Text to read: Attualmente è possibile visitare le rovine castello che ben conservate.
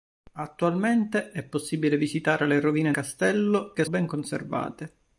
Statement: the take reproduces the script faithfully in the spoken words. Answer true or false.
true